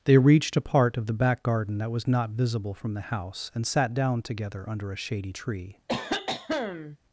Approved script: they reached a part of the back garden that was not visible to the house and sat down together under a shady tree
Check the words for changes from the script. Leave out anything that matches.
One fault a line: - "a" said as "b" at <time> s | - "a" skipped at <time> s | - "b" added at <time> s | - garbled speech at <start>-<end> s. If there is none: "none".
- "to" said as "from" at 2.7 s